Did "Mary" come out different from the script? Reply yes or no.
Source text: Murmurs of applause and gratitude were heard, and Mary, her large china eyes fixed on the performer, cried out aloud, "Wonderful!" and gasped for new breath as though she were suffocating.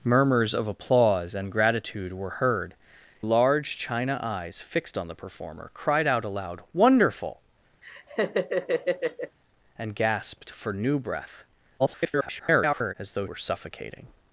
yes